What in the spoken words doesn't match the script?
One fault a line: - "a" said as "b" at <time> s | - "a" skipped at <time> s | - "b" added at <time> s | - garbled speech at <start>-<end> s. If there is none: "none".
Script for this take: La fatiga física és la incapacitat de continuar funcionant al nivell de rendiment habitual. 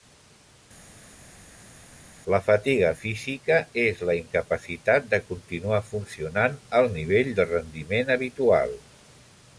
none